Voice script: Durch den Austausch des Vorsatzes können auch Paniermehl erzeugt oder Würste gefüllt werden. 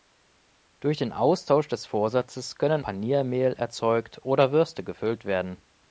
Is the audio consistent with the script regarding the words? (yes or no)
no